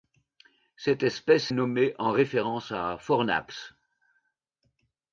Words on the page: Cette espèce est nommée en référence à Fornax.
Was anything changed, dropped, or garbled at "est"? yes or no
yes